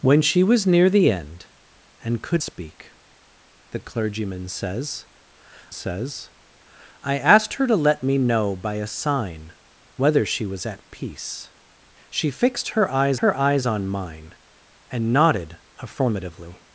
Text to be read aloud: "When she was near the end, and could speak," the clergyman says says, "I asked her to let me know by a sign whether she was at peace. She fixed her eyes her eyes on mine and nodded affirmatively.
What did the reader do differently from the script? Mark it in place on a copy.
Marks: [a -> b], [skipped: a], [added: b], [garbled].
"When she was near the end, and could speak," the clergyman says says, "I asked her to let me know by a sign whether she was at peace. She fixed her eyes her eyes on mine and nodded affirmatively.